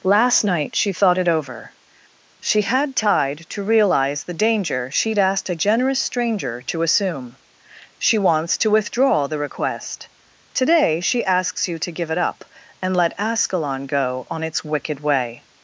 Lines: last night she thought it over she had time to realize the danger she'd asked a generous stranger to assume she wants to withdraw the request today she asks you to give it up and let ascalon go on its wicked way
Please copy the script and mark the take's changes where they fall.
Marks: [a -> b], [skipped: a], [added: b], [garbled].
last night she thought it over she had [time -> tide] to realize the danger she'd asked a generous stranger to assume she wants to withdraw the request today she asks you to give it up and let ascalon go on its wicked way